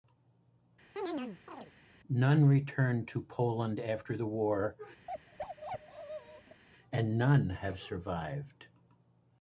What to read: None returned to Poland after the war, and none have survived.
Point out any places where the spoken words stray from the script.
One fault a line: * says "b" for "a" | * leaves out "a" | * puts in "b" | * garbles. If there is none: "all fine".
all fine